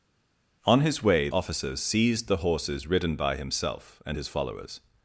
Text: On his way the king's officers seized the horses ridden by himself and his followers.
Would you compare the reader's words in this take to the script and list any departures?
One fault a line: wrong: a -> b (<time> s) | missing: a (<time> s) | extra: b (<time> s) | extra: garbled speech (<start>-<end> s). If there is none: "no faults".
missing: the king's (1.3 s)